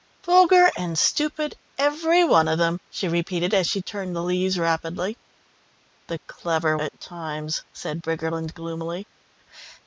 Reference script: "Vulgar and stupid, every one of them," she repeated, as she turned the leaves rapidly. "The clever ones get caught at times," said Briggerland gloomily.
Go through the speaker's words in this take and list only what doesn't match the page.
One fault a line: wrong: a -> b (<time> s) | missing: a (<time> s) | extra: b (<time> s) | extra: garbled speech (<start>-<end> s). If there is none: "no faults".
missing: ones get caught (6.8 s)